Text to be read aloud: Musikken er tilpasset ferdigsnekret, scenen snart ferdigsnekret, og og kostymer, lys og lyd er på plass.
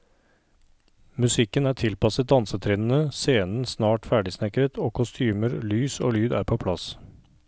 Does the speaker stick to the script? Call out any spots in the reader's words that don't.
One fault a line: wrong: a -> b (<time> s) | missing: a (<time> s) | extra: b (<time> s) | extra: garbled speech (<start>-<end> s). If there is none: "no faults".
wrong: ferdigsnekret -> dansetrinnene (2.3 s)
missing: og (4.9 s)